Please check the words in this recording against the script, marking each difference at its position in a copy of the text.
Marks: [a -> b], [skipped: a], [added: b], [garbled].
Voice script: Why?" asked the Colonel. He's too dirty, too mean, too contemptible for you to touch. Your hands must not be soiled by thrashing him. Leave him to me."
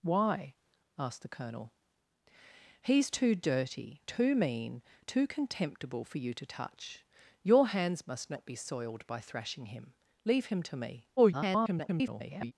Why?" asked the Colonel. He's too dirty, too mean, too contemptible for you to touch. Your hands must not be soiled by thrashing him. Leave him to me." [garbled]